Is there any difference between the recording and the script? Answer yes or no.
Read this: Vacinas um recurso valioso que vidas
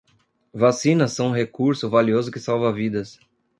yes